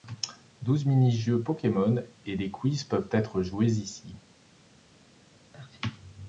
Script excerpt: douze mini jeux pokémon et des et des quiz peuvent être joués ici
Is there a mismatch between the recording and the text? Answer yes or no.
yes